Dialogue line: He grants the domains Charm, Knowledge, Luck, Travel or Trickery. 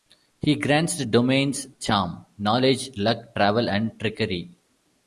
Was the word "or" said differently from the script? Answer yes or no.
yes